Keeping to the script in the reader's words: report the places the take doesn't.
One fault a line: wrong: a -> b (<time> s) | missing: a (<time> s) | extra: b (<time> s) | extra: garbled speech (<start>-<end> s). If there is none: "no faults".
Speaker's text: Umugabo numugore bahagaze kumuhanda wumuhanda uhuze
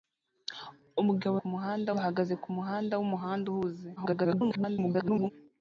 wrong: numugore -> kumuhanda (1.4 s)
extra: garbled speech (4.0-5.3 s)